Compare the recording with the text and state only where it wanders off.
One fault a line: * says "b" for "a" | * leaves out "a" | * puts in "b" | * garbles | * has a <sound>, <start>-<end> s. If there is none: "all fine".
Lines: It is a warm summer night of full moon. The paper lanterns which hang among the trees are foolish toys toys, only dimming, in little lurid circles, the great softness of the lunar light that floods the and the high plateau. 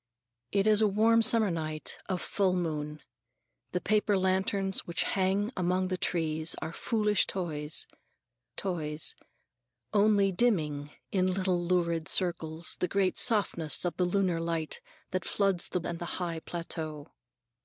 all fine